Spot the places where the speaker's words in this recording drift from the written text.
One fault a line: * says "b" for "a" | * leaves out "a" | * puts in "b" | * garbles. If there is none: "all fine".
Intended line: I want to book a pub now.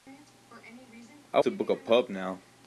* leaves out "want"